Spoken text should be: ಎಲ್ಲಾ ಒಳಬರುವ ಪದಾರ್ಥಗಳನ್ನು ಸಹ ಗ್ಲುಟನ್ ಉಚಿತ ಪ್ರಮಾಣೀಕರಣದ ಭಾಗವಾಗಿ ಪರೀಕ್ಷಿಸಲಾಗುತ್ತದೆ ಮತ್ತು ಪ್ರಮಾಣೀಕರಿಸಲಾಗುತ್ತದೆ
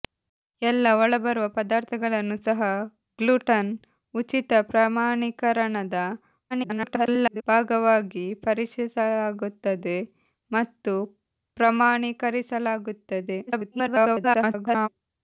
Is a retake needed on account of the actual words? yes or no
yes